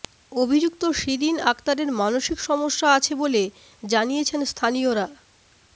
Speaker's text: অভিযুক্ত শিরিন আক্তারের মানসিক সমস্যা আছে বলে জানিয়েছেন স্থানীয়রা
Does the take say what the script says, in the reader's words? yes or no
yes